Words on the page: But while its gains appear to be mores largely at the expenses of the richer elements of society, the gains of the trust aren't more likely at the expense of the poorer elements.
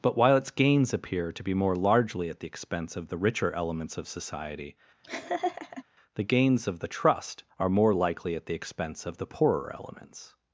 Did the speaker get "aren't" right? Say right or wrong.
wrong